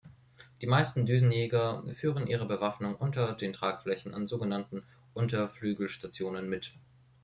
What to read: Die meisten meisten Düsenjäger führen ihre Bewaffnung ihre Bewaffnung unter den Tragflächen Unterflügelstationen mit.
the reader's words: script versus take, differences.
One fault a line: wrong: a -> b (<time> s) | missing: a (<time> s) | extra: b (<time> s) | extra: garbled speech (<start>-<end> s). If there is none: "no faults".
missing: meisten (1.1 s)
missing: ihre Bewaffnung (3.0 s)
extra: an sogenannten (4.1 s)